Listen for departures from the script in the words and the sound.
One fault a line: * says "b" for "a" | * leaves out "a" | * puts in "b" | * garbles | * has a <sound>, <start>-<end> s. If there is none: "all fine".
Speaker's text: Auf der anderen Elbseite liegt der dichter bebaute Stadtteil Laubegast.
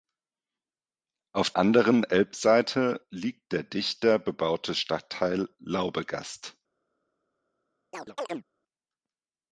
* leaves out "der"
* has a chirp, 7.9-8.4 s